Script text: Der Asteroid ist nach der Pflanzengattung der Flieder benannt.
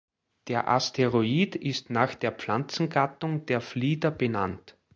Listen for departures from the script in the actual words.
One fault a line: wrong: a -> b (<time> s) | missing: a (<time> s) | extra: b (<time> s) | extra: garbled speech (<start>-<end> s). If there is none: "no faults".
no faults